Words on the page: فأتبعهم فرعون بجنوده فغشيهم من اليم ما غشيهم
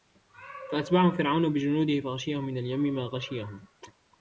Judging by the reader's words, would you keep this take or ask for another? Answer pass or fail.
pass